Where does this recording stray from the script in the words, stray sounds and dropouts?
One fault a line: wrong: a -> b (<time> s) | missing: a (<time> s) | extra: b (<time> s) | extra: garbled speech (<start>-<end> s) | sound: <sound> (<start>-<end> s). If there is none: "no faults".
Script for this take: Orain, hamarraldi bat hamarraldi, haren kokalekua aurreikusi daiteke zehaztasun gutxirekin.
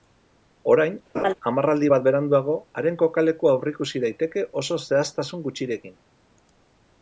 sound: laugh (1.1-1.3 s)
wrong: hamarraldi -> beranduago (2.0 s)
extra: oso (4.6 s)